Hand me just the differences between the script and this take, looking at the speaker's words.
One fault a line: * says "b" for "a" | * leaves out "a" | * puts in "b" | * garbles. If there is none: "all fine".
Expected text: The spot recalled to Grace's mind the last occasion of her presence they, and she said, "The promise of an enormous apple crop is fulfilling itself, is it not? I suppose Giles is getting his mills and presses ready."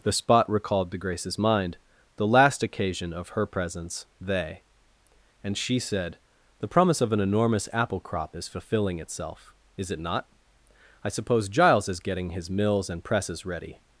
all fine